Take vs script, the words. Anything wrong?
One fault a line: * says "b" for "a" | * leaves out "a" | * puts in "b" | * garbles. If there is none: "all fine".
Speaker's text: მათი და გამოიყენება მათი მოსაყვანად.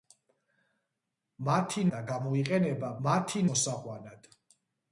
all fine